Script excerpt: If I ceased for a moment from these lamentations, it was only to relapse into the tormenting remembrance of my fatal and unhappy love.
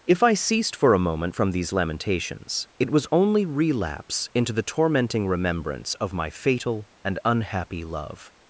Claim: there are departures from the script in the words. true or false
true